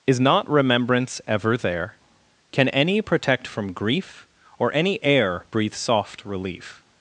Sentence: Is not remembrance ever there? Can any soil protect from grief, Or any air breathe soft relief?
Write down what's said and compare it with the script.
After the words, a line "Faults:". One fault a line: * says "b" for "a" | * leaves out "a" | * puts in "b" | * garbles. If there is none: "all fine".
Is not remembrance ever there? Can any protect from grief, Or any air breathe soft relief?
Faults:
* leaves out "soil"